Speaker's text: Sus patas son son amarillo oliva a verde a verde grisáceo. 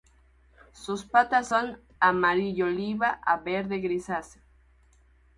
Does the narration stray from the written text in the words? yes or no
yes